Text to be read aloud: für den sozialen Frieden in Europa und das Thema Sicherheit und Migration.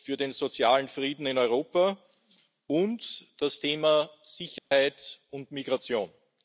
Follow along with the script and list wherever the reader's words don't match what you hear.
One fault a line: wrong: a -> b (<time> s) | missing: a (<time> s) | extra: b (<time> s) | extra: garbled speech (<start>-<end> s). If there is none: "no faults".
no faults